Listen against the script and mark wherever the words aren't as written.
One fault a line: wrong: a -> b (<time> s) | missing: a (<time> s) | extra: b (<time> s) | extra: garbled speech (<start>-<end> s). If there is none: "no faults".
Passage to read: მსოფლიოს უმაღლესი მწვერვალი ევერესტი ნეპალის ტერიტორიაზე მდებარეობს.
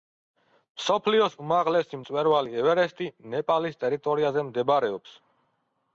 no faults